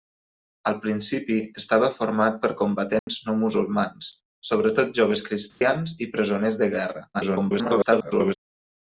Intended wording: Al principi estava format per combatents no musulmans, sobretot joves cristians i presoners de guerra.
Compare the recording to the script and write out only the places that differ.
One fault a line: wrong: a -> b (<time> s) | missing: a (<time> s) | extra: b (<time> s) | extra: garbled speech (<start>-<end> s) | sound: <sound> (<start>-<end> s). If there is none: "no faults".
sound: dropout (3.0-3.1 s)
sound: dropout (5.5-5.6 s)
extra: garbled speech (7.1-8.3 s)